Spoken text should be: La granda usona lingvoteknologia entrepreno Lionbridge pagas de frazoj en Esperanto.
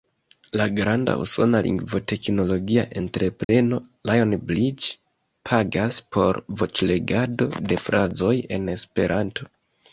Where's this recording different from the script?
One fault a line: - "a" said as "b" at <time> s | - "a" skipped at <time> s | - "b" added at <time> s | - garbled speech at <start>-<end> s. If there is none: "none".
- "por voĉlegado" added at 6.2 s